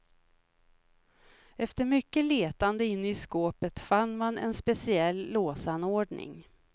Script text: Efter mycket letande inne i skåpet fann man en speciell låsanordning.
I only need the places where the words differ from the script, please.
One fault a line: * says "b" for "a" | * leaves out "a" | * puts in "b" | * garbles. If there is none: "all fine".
all fine